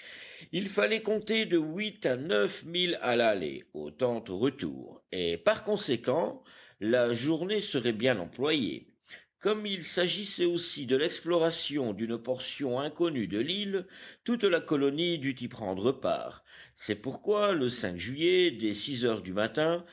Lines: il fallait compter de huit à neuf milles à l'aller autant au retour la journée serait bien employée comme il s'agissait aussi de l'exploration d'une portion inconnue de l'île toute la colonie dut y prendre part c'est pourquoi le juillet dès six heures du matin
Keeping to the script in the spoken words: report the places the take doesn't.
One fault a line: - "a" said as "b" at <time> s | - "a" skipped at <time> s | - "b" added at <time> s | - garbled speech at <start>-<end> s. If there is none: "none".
- "et par conséquent" added at 5.1 s